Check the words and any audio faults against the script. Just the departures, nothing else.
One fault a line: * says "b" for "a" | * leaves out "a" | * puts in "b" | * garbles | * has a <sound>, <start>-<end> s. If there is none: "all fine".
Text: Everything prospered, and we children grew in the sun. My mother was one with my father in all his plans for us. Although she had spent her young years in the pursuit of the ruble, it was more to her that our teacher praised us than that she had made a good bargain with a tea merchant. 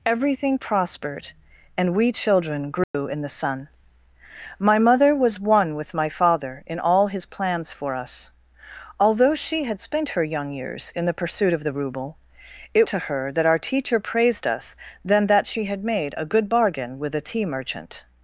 * has a dropout, 2.8-2.9 s
* leaves out "was more"